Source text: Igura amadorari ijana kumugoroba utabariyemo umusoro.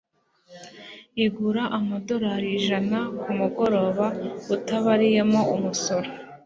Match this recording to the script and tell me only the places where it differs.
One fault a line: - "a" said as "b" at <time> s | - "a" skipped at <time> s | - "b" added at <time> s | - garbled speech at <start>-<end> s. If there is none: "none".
none